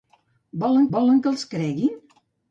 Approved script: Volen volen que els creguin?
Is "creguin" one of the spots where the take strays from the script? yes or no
no